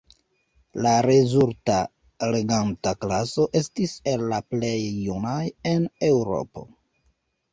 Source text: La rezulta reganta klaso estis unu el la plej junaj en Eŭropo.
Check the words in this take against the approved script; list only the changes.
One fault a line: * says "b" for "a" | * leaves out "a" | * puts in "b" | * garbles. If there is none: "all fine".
* leaves out "unu"